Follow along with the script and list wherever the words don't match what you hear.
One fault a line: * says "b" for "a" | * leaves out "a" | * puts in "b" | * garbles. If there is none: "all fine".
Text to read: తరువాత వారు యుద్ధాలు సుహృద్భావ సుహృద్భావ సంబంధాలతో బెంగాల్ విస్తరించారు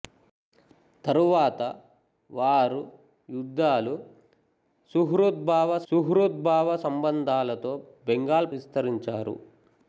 all fine